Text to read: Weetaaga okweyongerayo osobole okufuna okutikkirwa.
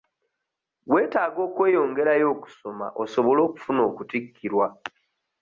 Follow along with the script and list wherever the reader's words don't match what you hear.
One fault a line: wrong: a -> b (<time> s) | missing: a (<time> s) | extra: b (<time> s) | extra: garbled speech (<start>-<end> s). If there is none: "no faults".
extra: okusoma (2.4 s)